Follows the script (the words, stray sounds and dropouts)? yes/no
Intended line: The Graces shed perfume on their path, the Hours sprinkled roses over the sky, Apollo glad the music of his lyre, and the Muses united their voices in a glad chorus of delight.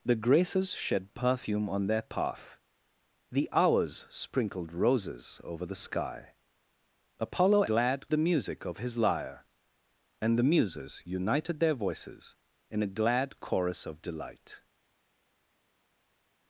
yes